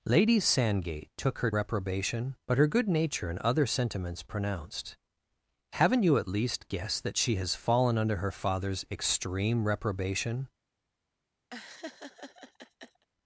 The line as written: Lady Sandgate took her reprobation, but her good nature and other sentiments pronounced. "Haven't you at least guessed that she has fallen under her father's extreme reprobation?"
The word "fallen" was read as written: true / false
true